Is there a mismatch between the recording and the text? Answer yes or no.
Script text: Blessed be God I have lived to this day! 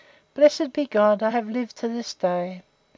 no